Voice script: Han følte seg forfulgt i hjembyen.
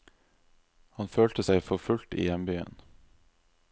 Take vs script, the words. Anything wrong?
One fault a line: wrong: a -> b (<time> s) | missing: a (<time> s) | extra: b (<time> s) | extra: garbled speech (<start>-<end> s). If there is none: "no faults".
no faults